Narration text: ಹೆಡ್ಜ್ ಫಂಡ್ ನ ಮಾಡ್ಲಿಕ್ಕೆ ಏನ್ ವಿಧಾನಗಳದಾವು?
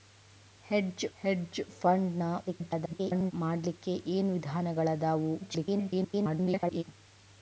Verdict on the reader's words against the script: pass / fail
fail